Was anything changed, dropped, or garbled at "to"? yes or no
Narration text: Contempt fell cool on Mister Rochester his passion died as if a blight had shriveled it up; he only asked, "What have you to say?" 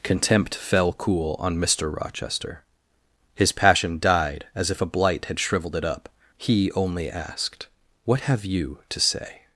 no